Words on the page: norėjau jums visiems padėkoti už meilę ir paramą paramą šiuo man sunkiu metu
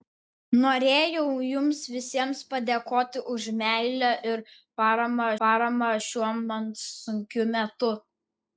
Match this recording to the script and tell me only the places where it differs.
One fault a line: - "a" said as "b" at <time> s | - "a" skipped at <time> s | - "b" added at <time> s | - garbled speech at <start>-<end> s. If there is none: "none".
none